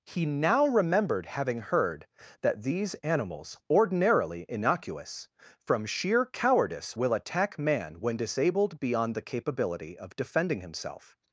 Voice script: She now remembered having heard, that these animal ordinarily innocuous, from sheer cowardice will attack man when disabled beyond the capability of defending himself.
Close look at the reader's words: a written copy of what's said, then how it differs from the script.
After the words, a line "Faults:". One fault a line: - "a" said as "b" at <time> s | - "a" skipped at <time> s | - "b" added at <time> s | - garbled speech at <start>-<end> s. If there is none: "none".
He now remembered having heard, that these animals ordinarily innocuous, from sheer cowardice will attack man when disabled beyond the capability of defending himself.
Faults:
- "She" said as "He" at 0.1 s
- "animal" said as "animals" at 3.0 s